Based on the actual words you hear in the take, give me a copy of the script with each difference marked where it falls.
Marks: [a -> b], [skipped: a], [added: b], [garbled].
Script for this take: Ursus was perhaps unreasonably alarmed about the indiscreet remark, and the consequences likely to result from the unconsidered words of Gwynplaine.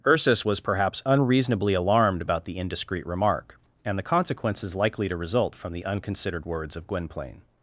Ursus was perhaps unreasonably alarmed about the indiscreet remark, and the consequences likely to result from the unconsidered words of Gwynplaine.